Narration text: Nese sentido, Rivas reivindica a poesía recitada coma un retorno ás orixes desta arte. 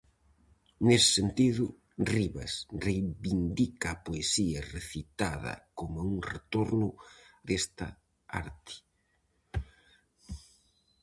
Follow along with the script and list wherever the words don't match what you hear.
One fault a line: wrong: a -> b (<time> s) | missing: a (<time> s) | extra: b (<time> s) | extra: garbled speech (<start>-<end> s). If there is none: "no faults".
missing: ás orixes (6.9 s)